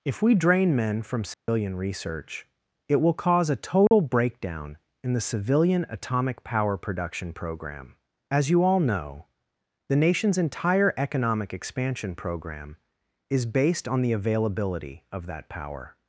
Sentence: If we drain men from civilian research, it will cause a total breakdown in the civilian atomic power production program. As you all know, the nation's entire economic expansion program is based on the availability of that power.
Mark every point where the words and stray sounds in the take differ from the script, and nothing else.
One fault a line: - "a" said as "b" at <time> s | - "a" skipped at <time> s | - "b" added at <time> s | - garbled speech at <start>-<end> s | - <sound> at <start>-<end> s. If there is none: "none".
- dropout at 1.3-1.5 s
- dropout at 3.9-3.9 s